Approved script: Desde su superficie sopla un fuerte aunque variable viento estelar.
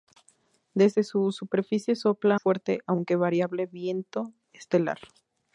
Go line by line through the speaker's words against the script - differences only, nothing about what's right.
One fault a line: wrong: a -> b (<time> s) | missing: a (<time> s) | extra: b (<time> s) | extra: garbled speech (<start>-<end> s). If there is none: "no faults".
missing: un (2.4 s)